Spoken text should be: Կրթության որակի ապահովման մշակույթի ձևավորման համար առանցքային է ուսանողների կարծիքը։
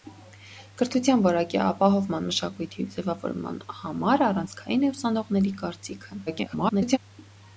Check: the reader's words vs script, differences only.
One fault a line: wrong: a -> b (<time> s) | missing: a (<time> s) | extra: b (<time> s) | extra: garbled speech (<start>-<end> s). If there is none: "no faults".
extra: garbled speech (6.3-7.0 s)